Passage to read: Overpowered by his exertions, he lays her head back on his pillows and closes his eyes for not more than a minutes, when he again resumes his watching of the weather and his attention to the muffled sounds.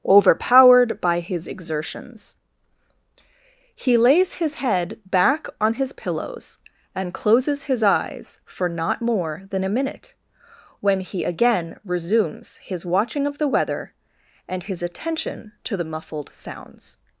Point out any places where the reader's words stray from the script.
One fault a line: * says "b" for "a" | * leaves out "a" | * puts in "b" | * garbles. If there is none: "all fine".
* says "his" for "her"
* says "minute" for "minutes"